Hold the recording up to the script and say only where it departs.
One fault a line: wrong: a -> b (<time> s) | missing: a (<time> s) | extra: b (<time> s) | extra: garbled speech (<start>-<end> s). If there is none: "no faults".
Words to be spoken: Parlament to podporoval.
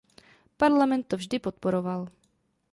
extra: vždy (1.2 s)